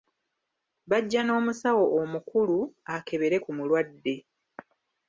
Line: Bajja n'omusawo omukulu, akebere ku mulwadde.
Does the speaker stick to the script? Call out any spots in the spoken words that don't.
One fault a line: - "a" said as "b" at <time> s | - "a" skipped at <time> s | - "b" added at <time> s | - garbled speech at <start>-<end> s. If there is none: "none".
none